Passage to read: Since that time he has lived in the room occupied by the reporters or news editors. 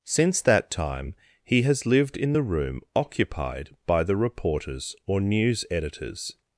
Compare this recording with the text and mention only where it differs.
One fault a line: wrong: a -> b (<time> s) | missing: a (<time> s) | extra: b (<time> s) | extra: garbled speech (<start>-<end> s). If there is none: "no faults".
no faults